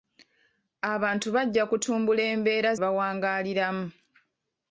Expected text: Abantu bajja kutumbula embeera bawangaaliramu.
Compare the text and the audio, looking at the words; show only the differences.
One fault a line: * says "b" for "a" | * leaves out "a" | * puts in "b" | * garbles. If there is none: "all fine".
all fine